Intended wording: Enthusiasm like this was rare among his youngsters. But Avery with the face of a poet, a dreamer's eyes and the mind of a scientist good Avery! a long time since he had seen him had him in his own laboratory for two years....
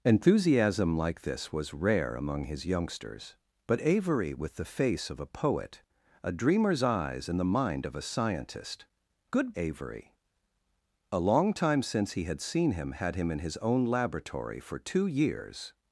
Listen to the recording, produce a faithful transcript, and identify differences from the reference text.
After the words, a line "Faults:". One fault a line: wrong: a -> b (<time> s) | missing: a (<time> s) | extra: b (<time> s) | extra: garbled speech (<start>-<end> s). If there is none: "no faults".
Enthusiasm like this was rare among his youngsters. But Avery with the face of a poet, a dreamer's eyes and the mind of a scientist good Avery! a long time since he had seen him had him in his own laboratory for two years....
Faults:
no faults